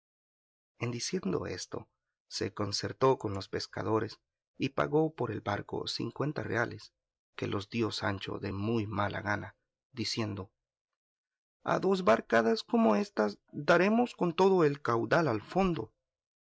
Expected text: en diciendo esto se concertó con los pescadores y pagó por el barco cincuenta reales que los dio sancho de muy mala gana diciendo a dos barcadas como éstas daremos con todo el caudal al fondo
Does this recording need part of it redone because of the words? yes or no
no